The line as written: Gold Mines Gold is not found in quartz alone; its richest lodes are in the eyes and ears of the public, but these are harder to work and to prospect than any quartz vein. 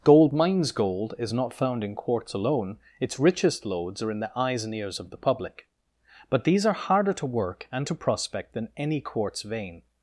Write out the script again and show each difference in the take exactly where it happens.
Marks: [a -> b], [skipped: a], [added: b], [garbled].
Gold Mines Gold is not found in quartz alone; its richest lodes are in the eyes and ears of the public, but these are harder to work and to prospect than any quartz vein.